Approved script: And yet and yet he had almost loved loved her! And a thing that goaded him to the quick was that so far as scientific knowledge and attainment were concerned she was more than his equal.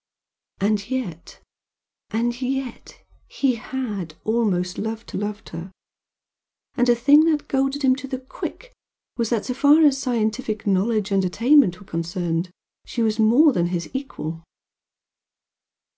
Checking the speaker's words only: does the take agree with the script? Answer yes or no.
yes